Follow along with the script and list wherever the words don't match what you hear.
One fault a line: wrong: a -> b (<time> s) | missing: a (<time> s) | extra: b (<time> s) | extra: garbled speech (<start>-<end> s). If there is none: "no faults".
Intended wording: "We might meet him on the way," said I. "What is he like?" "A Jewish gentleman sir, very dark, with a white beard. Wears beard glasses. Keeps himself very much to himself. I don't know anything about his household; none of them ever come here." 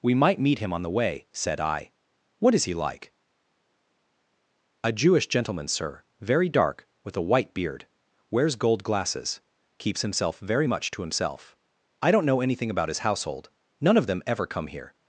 wrong: beard -> gold (8.6 s)